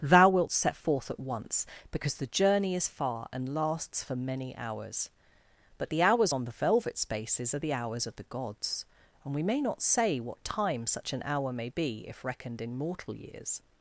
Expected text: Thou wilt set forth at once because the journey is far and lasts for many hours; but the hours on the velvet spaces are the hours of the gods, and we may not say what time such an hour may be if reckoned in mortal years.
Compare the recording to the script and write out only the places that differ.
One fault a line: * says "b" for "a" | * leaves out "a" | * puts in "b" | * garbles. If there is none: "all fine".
all fine